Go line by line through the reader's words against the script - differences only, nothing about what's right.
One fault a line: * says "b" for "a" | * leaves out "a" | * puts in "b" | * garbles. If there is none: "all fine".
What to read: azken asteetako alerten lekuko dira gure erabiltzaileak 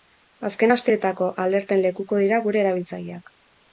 all fine